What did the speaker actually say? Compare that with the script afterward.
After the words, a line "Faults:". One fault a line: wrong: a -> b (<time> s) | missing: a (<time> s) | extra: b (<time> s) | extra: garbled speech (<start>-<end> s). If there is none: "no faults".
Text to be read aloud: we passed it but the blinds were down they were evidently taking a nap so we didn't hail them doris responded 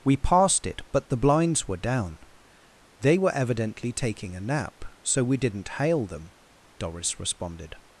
we passed it but the blinds were down they were evidently taking a nap so we didn't hail them doris responded
Faults:
no faults